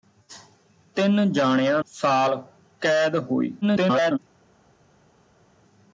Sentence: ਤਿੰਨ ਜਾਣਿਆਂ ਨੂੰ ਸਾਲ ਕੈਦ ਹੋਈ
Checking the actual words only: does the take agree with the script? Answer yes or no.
no